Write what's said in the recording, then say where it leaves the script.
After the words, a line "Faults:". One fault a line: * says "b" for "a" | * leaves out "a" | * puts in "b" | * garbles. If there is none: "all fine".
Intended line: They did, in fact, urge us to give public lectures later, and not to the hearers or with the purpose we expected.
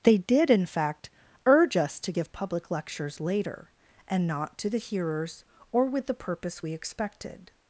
They did, in fact, urge us to give public lectures later, and not to the hearers or with the purpose we expected.
Faults:
all fine